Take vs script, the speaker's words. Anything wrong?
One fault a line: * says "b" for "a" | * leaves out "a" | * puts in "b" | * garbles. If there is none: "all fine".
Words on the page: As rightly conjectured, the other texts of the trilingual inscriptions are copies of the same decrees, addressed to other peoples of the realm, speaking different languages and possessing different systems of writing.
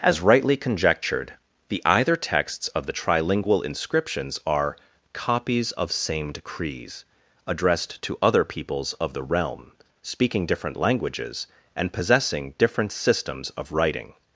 * says "either" for "other"
* leaves out "the"